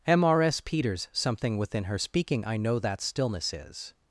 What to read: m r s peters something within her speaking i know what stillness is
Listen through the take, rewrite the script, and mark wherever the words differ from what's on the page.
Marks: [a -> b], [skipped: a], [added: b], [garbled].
m r s peters something within her speaking i know [what -> that] stillness is